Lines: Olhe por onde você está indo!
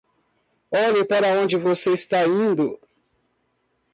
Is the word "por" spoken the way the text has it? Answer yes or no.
no